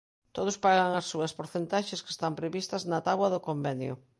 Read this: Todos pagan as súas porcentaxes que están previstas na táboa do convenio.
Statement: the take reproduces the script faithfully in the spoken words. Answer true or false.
true